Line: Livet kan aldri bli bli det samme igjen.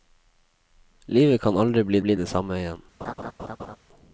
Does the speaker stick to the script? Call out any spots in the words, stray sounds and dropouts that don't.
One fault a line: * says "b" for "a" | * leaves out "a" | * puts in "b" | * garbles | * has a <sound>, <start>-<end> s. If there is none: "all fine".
* has a laugh, 3.0-3.8 s